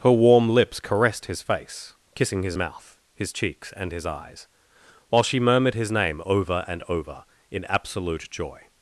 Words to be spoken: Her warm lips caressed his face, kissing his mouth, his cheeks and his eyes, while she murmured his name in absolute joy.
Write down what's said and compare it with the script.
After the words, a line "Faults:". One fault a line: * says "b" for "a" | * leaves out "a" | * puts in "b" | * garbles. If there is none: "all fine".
Her warm lips caressed his face, kissing his mouth, his cheeks and his eyes, while she murmured his name over and over in absolute joy.
Faults:
* puts in "over and over"